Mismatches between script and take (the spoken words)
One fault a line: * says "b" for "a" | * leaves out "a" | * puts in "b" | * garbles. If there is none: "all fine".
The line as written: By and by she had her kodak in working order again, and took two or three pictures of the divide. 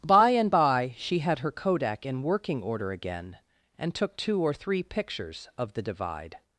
all fine